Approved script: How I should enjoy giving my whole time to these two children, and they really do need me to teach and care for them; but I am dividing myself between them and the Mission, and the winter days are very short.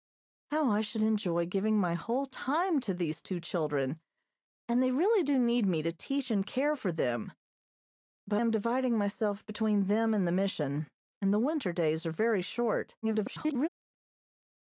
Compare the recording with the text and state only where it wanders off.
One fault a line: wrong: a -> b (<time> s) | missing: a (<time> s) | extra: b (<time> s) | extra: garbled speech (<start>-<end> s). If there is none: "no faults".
missing: I (8.4 s)
extra: garbled speech (13.0-13.7 s)